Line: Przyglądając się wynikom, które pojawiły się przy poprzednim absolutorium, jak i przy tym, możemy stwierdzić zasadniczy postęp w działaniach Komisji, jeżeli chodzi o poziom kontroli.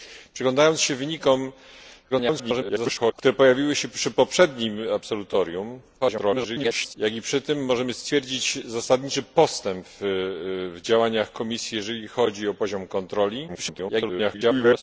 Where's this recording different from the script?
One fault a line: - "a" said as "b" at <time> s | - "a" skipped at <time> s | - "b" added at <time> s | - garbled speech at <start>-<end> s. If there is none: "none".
- garbled speech at 2.1-3.1 s
- garbled speech at 6.0-6.9 s
- garbled speech at 13.5-14.8 s